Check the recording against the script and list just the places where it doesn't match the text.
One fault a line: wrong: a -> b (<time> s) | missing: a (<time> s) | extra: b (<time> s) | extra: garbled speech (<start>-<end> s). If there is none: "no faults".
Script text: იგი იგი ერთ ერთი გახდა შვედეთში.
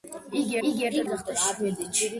no faults